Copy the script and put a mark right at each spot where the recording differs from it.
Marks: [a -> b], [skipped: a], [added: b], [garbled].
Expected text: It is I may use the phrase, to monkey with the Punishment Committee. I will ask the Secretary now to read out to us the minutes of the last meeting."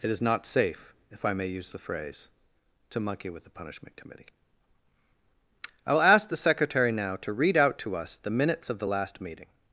It is [added: not safe if] I may use the phrase, to monkey with the Punishment Committee. I will ask the Secretary now to read out to us the minutes of the last meeting."